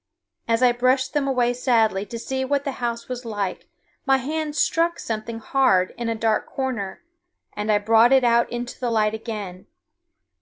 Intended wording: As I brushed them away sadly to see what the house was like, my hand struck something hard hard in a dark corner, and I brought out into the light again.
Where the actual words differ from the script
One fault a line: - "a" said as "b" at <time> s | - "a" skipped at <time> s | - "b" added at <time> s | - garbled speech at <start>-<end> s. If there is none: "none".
- "hard" skipped at 5.9 s
- "it" added at 8.1 s